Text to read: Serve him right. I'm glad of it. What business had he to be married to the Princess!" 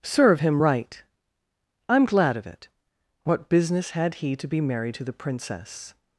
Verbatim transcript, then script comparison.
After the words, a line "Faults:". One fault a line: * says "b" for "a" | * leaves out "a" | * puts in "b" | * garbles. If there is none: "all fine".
Serve him right. I'm glad of it. What business had he to be married to the Princess!"
Faults:
all fine